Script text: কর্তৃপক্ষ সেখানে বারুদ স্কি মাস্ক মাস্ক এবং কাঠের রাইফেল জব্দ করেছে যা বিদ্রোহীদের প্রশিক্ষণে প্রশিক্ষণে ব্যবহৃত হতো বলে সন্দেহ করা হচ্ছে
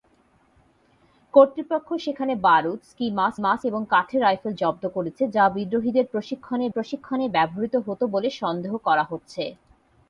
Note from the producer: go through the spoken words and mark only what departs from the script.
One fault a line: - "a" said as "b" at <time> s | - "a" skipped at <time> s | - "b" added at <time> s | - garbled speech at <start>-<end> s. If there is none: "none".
none